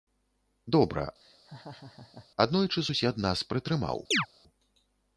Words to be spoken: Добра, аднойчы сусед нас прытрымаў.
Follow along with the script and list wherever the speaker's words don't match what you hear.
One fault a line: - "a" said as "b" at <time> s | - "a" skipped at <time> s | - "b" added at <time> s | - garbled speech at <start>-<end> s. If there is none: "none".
none